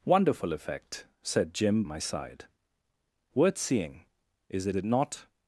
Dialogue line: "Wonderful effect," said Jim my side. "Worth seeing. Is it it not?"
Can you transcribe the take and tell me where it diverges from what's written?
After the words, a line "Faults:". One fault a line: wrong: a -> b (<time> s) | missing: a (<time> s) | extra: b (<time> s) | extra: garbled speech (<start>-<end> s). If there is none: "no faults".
"Wonderful effect," said Jim my side. "Worth seeing. Is it it not?"
Faults:
no faults